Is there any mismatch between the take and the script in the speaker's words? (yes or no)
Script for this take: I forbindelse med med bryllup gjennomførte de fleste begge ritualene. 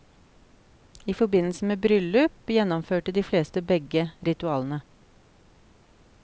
yes